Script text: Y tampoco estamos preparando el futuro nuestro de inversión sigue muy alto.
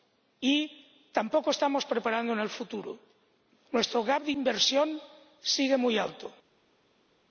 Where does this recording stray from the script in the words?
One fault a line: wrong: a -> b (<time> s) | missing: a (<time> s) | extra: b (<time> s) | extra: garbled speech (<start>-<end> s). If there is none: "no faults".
extra: gap (4.0 s)